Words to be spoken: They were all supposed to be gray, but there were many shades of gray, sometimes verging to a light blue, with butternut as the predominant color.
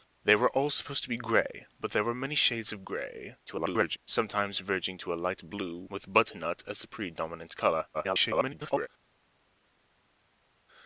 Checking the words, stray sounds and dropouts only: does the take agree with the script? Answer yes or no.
no